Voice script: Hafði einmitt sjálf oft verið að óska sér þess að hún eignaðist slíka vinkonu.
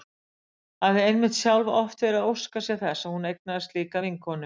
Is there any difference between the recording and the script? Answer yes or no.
no